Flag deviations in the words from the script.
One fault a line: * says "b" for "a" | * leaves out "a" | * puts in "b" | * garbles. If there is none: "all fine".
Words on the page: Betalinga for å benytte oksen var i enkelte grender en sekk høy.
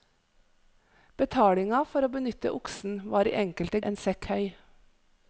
* leaves out "grender"